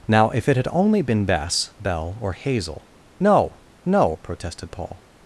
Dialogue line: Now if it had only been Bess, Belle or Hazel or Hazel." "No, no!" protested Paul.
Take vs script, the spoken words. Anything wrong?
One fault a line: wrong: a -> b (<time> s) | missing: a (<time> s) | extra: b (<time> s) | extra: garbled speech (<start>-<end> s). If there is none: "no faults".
missing: or Hazel (2.9 s)